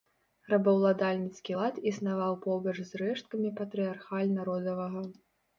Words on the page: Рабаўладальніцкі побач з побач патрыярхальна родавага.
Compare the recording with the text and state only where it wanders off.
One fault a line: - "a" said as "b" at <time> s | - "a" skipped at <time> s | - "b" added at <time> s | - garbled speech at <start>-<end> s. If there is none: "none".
- "лад існаваў" added at 1.6 s
- "побач" said as "рэшткамі" at 3.0 s